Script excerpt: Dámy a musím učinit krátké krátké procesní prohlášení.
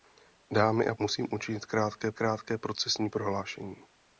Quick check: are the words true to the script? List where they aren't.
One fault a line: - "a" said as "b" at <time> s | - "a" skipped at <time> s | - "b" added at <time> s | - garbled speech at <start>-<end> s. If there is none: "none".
none